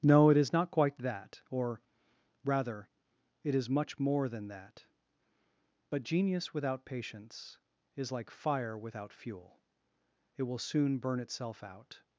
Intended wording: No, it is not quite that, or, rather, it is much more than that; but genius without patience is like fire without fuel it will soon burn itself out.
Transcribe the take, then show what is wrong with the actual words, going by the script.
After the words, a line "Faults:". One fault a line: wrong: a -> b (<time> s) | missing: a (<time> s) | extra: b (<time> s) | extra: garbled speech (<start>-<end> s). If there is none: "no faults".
No, it is not quite that, or, rather, it is much more than that; but genius without patience is like fire without fuel it will soon burn itself out.
Faults:
no faults